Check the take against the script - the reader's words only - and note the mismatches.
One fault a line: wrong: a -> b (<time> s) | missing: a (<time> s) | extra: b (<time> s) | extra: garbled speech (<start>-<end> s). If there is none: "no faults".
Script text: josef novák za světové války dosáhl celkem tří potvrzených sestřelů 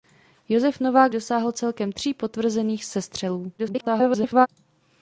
missing: za světové války (1.1 s)
extra: garbled speech (3.6-4.5 s)